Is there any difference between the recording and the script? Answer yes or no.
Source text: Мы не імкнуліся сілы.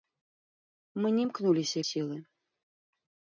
no